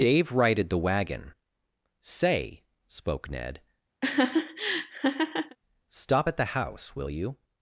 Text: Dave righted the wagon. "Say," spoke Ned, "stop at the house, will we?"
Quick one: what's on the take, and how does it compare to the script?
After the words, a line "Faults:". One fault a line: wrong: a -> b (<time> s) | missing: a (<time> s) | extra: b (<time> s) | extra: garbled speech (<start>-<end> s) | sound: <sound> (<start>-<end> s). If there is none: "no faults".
Dave righted the wagon. "Say," spoke Ned, "stop at the house, will you?"
Faults:
sound: laugh (4.0-5.6 s)
wrong: we -> you (7.1 s)